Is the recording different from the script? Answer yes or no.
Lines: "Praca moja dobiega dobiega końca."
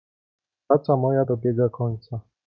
yes